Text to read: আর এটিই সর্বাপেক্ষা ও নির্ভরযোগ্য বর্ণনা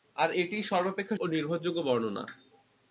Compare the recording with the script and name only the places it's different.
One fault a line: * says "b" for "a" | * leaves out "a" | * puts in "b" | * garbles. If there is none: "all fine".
all fine